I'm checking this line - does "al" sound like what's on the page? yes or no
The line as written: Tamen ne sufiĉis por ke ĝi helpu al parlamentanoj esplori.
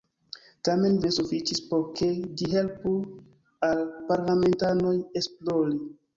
yes